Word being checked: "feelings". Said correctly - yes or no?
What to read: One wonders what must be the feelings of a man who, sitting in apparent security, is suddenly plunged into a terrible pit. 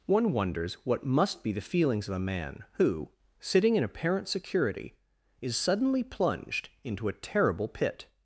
yes